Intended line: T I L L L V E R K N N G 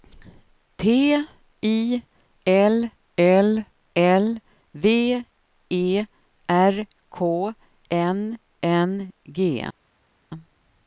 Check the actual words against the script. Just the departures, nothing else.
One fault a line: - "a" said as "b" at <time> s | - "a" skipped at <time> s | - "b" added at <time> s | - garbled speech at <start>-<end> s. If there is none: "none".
none